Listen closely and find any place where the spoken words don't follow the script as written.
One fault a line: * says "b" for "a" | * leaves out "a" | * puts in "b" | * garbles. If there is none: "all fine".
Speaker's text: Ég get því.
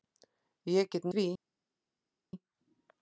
all fine